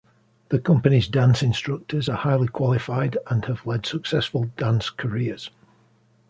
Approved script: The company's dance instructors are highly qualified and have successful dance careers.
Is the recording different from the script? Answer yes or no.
yes